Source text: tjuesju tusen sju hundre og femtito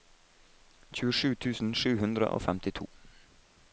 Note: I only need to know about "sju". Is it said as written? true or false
true